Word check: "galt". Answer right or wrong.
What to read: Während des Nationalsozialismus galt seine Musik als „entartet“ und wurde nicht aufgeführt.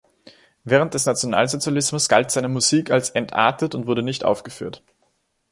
right